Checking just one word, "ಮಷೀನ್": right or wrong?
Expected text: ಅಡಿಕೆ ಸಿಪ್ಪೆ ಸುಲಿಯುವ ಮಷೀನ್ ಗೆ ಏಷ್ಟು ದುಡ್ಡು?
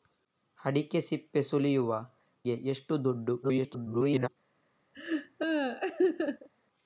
wrong